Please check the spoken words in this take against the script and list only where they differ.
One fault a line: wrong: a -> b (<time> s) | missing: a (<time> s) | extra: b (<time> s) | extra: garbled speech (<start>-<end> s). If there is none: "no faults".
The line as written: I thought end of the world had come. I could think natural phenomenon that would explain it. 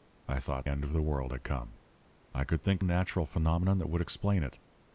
no faults